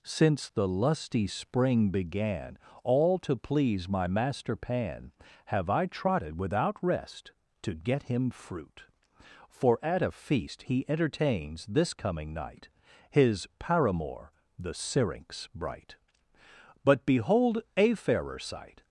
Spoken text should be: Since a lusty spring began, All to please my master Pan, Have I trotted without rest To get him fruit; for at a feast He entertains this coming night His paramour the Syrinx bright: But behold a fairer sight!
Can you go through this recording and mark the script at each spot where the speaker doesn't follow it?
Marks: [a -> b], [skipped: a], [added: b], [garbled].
Since [a -> the] lusty spring began, All to please my master Pan, Have I trotted without rest To get him fruit; for at a feast He entertains this coming night His paramour the Syrinx bright: But behold a fairer sight!